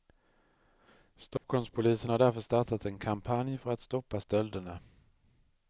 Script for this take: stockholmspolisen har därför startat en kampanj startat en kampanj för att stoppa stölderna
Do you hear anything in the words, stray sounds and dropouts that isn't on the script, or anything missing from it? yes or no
yes